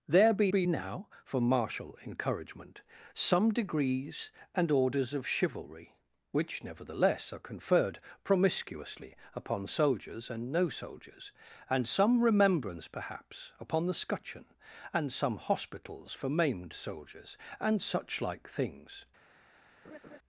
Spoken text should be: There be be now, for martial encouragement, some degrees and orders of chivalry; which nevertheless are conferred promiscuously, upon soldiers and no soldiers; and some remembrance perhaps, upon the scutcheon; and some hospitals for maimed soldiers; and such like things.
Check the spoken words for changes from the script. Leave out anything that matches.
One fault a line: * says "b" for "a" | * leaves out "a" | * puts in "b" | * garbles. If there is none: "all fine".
all fine